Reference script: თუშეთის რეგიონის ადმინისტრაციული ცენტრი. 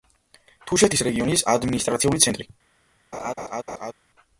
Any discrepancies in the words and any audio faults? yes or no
yes